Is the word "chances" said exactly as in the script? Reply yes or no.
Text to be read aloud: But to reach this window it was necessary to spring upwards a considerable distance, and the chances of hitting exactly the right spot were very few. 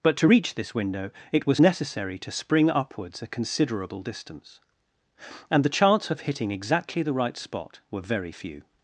no